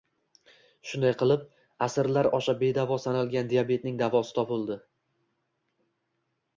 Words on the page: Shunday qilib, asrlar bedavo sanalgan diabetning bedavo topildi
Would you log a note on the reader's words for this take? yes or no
yes